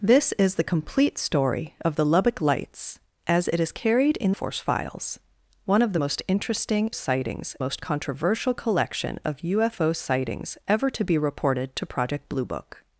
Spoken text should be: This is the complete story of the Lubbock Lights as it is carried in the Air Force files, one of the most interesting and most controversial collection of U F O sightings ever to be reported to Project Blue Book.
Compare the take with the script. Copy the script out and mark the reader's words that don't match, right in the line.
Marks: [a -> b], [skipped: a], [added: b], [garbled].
This is the complete story of the Lubbock Lights as it is carried in [skipped: the Air] Force files, one of the most interesting [and -> sightings] most controversial collection of U F O sightings ever to be reported to Project Blue Book.